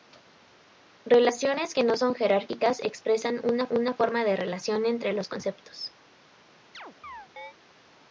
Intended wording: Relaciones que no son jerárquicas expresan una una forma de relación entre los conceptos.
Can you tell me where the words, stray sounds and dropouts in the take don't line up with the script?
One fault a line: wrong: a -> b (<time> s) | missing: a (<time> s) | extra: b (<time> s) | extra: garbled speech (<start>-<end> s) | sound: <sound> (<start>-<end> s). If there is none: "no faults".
sound: chirp (6.7-7.5 s)